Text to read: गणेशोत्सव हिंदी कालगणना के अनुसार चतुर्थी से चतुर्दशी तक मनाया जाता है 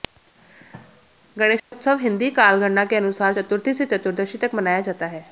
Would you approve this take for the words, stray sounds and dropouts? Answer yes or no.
no